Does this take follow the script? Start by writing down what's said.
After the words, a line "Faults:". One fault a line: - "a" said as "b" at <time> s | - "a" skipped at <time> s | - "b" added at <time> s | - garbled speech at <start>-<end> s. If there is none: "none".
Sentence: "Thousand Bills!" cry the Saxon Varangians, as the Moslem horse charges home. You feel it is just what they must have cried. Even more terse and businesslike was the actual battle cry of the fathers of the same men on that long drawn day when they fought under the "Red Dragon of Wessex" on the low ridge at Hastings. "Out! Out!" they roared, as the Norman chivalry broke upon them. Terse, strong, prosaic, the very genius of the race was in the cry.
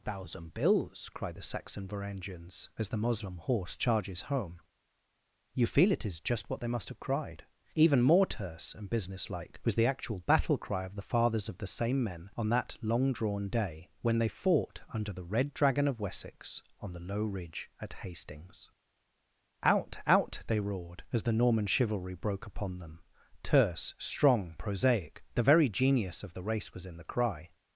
"Thousand Bills!" cry the Saxon Varangians, as the Moslem horse charges home. You feel it is just what they must have cried. Even more terse and businesslike was the actual battle cry of the fathers of the same men on that long drawn day when they fought under the "Red Dragon of Wessex" on the low ridge at Hastings. "Out! Out!" they roared, as the Norman chivalry broke upon them. Terse, strong, prosaic, the very genius of the race was in the cry.
Faults:
none